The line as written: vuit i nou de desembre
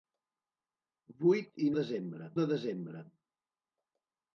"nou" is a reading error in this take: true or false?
true